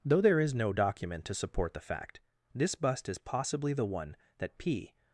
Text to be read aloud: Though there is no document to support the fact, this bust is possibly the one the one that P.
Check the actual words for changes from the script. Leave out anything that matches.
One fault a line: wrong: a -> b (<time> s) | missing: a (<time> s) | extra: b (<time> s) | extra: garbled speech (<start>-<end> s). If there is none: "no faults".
missing: the one (4.2 s)